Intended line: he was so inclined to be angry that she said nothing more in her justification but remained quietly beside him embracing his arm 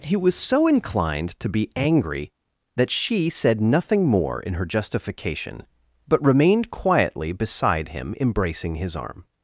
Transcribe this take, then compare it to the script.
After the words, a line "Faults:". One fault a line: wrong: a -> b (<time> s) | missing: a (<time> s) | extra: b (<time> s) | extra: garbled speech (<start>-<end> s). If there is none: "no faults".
he was so inclined to be angry that she said nothing more in her justification but remained quietly beside him embracing his arm
Faults:
no faults